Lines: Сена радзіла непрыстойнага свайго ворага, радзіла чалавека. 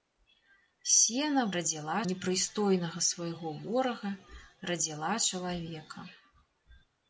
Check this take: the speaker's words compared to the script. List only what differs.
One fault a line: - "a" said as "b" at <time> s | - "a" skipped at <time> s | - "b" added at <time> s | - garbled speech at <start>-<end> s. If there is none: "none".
none